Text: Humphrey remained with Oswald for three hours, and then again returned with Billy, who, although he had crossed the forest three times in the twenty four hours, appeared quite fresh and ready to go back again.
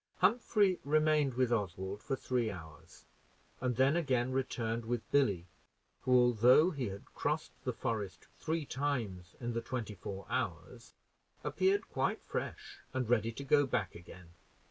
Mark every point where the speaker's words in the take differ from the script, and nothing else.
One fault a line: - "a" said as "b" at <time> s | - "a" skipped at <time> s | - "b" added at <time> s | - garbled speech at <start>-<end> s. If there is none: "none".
none